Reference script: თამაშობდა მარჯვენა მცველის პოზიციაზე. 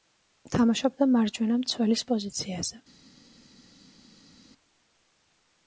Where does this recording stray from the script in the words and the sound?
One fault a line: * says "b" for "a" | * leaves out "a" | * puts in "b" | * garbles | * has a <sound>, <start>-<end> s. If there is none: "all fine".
all fine